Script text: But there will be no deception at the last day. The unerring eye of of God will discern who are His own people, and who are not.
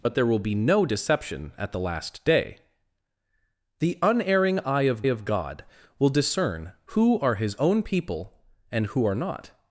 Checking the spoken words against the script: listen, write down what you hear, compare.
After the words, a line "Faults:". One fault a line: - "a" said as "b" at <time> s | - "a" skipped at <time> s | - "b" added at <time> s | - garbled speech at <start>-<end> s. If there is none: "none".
But there will be no deception at the last day. The unerring eye of of God will discern who are His own people, and who are not.
Faults:
none